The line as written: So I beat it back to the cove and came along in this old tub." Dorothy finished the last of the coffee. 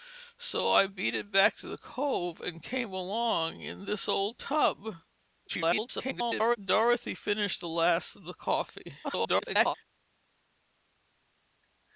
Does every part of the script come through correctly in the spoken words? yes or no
no